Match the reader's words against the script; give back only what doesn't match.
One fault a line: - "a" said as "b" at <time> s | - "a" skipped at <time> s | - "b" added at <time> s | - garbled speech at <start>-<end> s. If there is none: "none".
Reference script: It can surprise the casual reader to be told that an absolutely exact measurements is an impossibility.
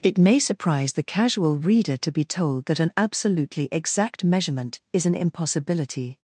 - "can" said as "may" at 0.2 s
- "measurements" said as "measurement" at 4.2 s